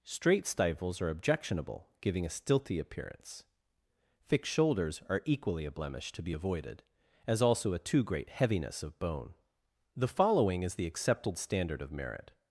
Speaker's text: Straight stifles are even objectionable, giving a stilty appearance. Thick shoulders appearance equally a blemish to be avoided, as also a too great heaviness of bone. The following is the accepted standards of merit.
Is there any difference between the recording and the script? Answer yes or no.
yes